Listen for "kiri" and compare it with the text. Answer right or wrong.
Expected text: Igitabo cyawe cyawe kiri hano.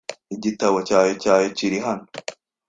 right